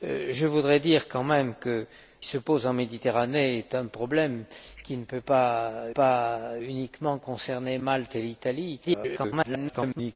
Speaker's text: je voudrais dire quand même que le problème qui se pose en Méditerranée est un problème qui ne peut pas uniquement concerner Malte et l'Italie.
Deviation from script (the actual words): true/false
true